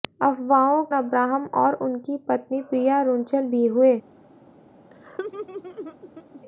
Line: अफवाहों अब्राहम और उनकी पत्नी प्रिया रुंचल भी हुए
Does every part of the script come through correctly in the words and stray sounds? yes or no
no